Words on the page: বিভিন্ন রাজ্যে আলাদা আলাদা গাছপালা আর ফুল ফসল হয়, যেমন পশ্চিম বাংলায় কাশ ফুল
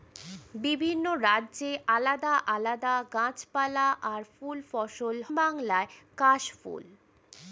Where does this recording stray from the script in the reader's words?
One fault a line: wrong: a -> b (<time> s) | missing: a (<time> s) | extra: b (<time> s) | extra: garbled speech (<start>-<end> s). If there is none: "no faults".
missing: হয় যেমন পশ্চিম (5.2 s)